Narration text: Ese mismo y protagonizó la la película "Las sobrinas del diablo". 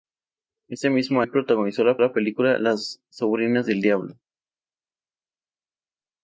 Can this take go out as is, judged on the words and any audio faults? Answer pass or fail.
pass